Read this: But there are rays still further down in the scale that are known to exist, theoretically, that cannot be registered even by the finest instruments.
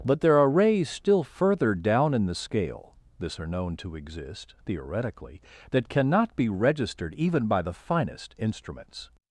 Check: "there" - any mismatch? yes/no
no